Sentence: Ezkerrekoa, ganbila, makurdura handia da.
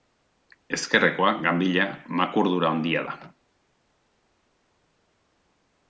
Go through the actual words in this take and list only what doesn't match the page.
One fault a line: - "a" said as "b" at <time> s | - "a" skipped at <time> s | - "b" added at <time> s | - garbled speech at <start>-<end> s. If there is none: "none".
none